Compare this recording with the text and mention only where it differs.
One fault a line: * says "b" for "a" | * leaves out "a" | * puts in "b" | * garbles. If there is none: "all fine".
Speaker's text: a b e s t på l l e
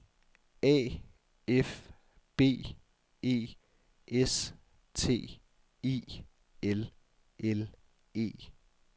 * puts in "f"
* says "i" for "på"